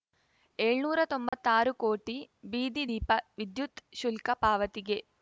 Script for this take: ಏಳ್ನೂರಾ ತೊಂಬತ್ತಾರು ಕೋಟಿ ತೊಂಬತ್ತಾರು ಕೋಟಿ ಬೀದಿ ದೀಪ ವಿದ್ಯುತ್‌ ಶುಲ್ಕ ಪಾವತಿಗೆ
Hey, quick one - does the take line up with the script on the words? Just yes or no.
no